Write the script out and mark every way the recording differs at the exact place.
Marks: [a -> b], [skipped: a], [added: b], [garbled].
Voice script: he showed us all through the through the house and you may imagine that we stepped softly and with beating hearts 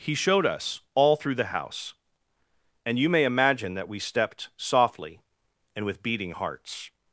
he showed us all through the [skipped: through the] house and you may imagine that we stepped softly and with beating hearts